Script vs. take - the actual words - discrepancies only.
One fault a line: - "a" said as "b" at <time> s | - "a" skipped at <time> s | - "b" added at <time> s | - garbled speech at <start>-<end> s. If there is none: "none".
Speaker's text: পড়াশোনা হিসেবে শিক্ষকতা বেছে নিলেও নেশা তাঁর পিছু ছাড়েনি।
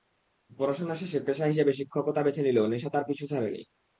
- "শেষে পেশা" added at 0.9 s